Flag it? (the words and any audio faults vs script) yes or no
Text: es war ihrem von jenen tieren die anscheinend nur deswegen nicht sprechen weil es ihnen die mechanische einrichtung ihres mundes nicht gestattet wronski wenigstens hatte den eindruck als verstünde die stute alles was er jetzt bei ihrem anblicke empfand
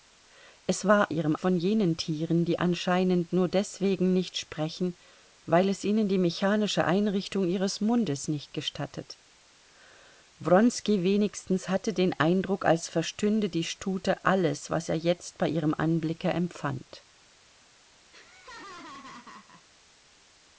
yes